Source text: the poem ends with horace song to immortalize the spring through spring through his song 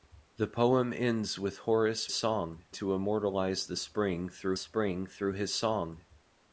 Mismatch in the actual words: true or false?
false